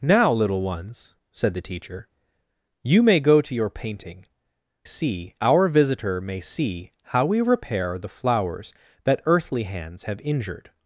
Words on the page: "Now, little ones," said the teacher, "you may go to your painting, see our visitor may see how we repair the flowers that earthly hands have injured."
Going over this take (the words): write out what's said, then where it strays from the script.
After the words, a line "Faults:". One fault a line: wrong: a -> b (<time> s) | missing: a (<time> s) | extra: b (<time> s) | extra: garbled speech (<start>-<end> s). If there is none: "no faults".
"Now, little ones," said the teacher, "you may go to your painting, see our visitor may see how we repair the flowers that earthly hands have injured."
Faults:
no faults